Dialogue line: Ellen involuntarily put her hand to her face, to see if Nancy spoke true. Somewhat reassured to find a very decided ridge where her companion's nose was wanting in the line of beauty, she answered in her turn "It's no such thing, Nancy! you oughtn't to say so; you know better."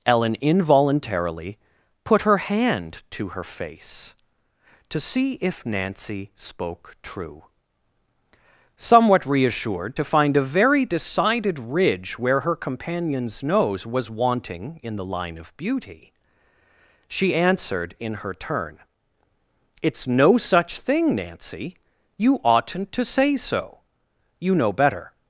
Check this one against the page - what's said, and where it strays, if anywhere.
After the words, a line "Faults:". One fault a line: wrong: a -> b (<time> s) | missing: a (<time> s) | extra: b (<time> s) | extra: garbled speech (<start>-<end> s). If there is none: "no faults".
Ellen involuntarily put her hand to her face, to see if Nancy spoke true. Somewhat reassured to find a very decided ridge where her companion's nose was wanting in the line of beauty, she answered in her turn "It's no such thing, Nancy! you oughtn't to say so; you know better."
Faults:
no faults